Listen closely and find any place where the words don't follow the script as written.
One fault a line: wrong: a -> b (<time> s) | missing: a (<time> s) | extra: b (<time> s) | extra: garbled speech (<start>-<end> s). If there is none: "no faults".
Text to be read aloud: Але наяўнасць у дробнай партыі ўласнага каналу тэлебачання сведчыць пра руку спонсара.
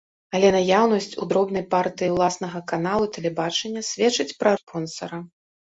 missing: руку (4.5 s)